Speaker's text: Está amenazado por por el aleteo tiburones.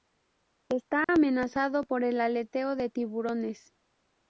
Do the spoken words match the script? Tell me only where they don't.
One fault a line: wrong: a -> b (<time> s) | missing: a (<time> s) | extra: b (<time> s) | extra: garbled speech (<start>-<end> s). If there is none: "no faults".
missing: por (2.0 s)
extra: de (2.8 s)